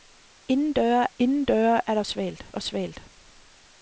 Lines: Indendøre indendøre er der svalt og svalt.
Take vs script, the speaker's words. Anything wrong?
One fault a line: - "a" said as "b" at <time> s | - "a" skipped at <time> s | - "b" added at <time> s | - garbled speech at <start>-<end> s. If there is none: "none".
none